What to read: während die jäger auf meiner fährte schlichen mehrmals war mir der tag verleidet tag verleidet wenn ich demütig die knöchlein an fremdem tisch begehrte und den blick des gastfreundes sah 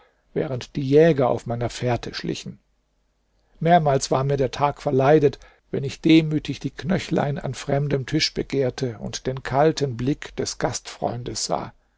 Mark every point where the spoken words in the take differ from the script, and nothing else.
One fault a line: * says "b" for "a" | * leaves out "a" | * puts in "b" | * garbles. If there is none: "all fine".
* leaves out "tag verleidet"
* puts in "kalten"